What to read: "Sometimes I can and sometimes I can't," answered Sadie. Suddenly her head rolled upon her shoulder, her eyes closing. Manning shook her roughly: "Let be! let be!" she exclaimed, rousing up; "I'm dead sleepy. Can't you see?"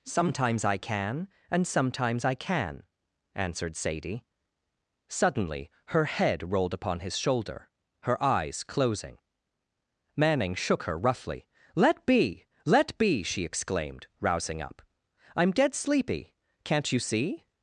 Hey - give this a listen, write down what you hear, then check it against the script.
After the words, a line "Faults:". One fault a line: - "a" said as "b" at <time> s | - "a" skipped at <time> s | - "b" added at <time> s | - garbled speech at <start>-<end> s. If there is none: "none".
"Sometimes I can and sometimes I can," answered Sadie. Suddenly her head rolled upon his shoulder, her eyes closing. Manning shook her roughly: "Let be! let be!" she exclaimed, rousing up; "I'm dead sleepy. Can't you see?"
Faults:
- "can't" said as "can" at 2.4 s
- "her" said as "his" at 7.0 s